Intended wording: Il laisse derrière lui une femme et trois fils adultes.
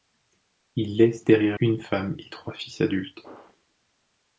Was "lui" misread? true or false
true